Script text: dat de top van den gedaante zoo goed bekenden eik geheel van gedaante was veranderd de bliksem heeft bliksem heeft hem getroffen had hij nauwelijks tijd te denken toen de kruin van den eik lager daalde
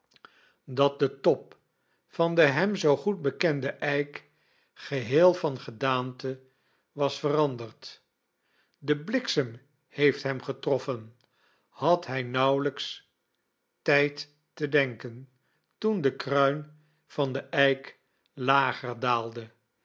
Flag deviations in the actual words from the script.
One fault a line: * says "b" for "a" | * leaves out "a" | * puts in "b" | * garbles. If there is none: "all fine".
* says "hem" for "gedaante"
* leaves out "bliksem heeft"